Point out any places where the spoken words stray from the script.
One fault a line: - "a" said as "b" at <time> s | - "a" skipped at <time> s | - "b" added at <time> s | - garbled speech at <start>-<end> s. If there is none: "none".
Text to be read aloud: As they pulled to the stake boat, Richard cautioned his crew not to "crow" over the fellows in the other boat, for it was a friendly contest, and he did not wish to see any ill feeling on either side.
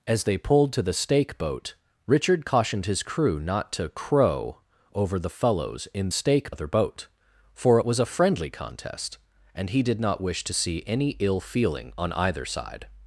- "the" said as "stake" at 6.1 s